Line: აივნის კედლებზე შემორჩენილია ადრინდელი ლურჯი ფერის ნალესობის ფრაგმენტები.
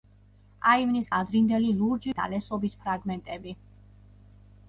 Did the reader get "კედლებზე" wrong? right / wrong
wrong